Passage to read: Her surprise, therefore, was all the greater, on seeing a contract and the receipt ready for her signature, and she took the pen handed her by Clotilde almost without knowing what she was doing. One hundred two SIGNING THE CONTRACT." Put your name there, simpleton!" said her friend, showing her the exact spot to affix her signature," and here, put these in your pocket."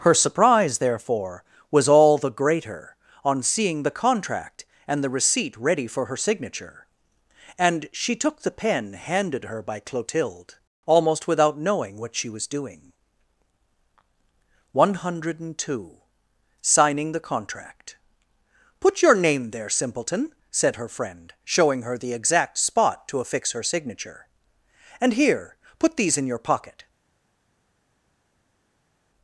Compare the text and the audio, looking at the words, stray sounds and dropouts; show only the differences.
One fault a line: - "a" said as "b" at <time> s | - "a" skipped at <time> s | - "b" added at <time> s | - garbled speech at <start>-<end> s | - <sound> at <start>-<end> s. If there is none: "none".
- "a" said as "the" at 3.8 s